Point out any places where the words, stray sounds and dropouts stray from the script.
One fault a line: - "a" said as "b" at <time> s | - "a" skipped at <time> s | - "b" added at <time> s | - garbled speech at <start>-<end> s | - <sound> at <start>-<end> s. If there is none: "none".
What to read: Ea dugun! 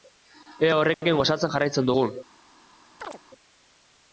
- "horrekin gozatzen jarraitzen" added at 0.8 s
- chirp at 3.0-3.2 s